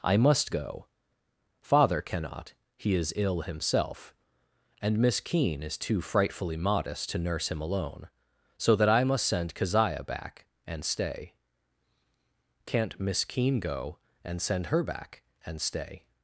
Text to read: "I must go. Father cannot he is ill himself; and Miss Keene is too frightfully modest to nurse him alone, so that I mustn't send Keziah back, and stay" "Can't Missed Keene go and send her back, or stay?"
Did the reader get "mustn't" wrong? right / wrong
wrong